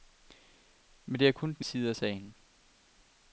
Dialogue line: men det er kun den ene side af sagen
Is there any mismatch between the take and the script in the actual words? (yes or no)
yes